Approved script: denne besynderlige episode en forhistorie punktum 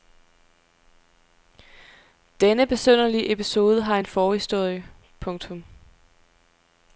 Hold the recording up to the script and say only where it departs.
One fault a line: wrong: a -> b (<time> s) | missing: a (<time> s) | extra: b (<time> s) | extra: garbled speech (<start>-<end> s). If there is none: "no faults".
extra: har (3.8 s)